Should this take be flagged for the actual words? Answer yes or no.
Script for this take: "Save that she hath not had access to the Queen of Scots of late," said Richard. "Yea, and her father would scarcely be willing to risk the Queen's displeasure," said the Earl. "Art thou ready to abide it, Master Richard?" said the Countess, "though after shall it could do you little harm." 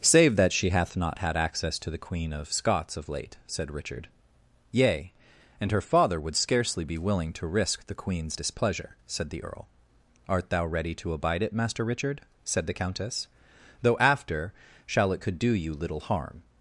no